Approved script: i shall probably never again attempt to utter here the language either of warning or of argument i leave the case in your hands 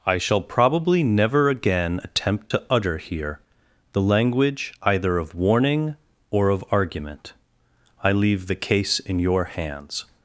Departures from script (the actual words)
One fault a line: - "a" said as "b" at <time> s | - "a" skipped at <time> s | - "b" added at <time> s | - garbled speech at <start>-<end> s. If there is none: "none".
none